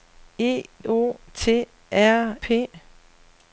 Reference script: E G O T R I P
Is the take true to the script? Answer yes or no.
no